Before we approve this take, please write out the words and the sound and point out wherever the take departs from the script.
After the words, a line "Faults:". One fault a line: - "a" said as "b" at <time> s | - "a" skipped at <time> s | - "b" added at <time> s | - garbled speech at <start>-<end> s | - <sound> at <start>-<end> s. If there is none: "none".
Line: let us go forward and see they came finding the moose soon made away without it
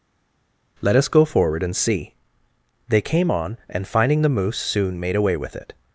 let us go forward and see they came on and finding the moose soon made away with it
Faults:
- "on and" added at 3.3 s
- "without" said as "with" at 5.4 s